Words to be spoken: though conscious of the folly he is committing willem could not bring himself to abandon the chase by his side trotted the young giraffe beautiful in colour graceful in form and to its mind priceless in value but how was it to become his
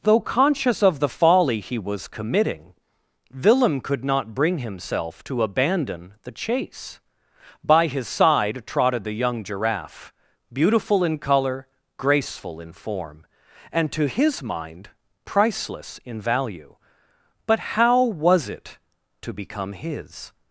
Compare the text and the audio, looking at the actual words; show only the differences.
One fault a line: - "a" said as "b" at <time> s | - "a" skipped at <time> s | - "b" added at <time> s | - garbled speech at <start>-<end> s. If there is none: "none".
- "is" said as "was" at 1.8 s
- "its" said as "his" at 14.1 s